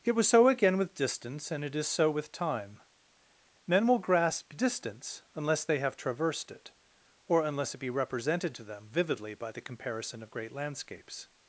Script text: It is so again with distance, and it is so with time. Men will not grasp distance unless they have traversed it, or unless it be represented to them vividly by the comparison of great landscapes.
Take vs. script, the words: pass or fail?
fail